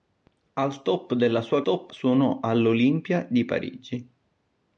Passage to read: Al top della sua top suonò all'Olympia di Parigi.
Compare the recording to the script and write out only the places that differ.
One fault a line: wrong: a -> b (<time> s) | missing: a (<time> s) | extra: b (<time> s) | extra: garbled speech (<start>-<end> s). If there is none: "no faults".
no faults